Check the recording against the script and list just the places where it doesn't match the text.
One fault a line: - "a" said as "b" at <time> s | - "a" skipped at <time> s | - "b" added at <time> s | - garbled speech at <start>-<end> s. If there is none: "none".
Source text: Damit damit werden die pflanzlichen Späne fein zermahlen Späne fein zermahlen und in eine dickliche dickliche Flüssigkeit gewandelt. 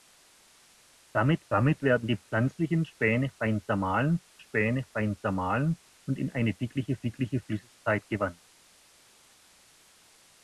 none